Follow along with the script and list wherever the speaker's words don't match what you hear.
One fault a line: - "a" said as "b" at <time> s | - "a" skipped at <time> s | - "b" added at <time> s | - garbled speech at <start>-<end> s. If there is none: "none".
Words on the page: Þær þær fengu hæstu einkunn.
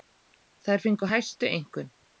- "þær" skipped at 0.8 s